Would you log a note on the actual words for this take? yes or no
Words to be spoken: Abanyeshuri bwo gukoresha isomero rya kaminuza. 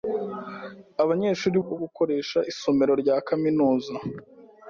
no